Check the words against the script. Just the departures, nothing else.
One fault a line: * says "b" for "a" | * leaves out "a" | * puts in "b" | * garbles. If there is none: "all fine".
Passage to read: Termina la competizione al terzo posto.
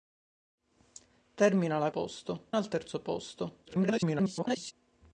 * says "posto" for "competizione"
* garbles